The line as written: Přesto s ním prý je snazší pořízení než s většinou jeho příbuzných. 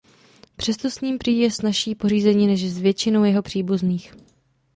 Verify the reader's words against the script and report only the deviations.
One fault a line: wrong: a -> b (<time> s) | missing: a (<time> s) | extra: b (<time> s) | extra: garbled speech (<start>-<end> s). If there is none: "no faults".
no faults